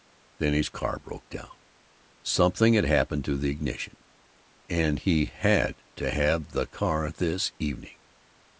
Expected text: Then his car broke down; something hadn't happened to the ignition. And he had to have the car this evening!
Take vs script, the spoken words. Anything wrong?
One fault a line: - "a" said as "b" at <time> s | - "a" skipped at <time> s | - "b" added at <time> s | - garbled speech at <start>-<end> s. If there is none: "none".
- "hadn't" said as "had" at 2.7 s